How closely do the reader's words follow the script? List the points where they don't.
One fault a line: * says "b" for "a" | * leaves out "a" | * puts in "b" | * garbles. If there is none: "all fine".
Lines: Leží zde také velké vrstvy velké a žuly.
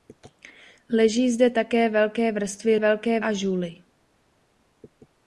all fine